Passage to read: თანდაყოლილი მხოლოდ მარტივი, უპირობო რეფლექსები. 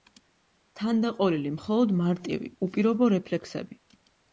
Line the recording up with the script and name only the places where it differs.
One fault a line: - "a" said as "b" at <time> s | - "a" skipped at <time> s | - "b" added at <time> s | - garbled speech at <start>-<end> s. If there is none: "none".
none